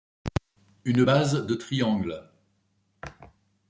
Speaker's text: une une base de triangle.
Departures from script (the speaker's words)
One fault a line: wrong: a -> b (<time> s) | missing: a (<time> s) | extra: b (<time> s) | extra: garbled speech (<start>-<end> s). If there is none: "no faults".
missing: une (1.1 s)